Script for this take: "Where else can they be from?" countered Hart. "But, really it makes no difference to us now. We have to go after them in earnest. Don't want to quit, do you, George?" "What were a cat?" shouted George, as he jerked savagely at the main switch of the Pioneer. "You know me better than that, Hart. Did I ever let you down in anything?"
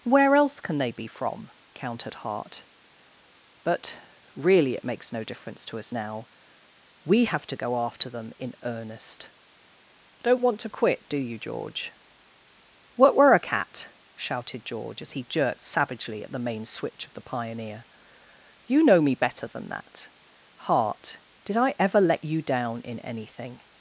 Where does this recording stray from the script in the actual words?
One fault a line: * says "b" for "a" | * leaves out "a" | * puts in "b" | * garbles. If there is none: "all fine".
all fine